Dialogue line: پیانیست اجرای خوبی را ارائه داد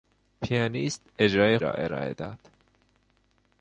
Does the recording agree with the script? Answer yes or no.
no